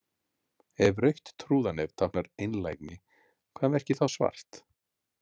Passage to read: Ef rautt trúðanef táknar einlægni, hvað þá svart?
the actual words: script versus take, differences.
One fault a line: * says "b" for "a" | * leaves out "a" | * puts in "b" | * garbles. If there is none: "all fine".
* puts in "merkir"